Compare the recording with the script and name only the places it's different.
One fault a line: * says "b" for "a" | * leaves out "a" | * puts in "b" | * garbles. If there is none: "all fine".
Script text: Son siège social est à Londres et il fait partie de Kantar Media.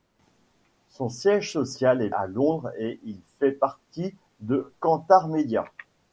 all fine